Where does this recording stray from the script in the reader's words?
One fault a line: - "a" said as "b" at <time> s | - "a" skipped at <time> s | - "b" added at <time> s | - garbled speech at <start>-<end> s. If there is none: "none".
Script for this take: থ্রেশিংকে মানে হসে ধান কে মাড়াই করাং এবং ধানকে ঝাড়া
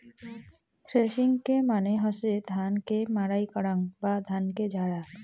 - "এবং" said as "বা" at 4.0 s